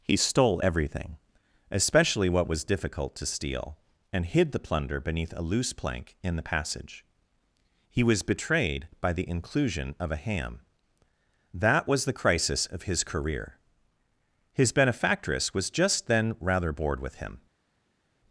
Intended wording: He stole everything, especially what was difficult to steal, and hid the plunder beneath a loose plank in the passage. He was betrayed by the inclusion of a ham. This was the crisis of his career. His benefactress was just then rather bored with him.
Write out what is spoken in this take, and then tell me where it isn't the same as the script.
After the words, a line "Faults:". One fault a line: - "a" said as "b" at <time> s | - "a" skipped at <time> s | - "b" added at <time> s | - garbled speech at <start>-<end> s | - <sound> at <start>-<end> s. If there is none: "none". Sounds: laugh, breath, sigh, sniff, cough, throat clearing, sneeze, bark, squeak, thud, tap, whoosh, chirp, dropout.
He stole everything, especially what was difficult to steal, and hid the plunder beneath a loose plank in the passage. He was betrayed by the inclusion of a ham. That was the crisis of his career. His benefactress was just then rather bored with him.
Faults:
- "This" said as "That" at 11.5 s